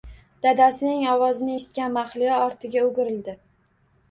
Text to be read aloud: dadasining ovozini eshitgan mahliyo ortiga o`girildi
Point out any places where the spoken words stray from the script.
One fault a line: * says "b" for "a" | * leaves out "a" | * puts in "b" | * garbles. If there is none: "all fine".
all fine